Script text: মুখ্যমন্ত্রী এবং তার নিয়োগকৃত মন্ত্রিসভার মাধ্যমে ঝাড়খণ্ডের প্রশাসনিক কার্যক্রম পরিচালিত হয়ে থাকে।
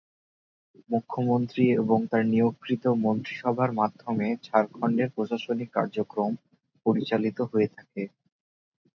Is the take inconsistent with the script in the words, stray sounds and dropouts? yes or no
no